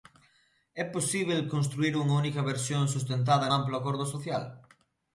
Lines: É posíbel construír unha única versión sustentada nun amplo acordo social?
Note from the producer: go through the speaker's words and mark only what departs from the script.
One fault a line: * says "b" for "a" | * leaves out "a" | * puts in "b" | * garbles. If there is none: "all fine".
* leaves out "nun"